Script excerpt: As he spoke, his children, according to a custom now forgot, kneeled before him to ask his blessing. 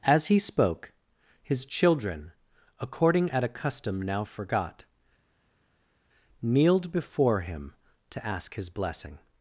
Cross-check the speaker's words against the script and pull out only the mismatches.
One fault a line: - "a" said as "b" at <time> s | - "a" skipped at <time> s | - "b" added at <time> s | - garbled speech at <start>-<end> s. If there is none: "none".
- "to" said as "at" at 3.3 s